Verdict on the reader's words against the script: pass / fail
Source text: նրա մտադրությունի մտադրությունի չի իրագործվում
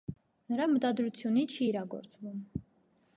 fail